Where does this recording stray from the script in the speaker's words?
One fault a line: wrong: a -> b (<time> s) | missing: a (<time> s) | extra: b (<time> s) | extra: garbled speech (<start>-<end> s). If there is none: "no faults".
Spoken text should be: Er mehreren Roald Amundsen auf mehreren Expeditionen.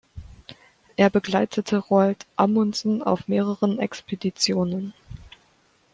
wrong: mehreren -> begleitete (1.1 s)